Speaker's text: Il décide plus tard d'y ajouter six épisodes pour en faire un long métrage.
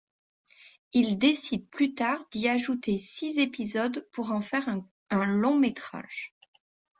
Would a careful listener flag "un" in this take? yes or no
no